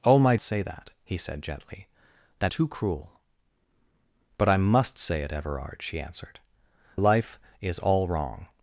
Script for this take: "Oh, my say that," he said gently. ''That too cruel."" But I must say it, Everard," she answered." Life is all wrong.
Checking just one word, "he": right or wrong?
right